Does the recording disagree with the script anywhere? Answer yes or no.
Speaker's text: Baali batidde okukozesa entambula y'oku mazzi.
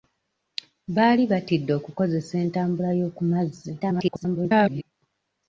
yes